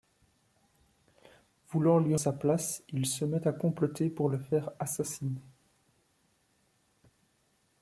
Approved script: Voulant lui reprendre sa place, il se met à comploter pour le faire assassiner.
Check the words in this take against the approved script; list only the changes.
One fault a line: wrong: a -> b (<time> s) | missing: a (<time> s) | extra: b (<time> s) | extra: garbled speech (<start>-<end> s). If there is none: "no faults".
missing: reprendre (2.1 s)